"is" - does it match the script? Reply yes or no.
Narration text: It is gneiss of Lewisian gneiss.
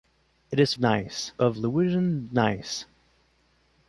yes